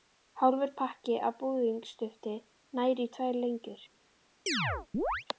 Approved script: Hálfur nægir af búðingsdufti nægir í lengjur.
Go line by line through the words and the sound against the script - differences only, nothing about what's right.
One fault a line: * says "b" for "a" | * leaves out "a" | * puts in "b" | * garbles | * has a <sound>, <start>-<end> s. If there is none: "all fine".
* says "pakki" for "nægir"
* puts in "tvær"
* has a chirp, 4.5-5.3 s